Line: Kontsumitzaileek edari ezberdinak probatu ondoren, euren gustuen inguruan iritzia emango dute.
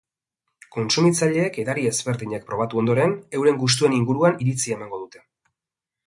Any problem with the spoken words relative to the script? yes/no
no